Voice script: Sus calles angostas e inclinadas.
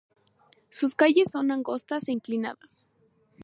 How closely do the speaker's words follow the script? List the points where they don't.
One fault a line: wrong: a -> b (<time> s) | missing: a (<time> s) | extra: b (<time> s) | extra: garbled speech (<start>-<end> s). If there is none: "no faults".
extra: son (1.3 s)